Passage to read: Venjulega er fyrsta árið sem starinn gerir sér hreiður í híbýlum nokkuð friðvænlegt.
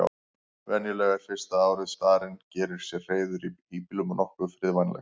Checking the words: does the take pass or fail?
fail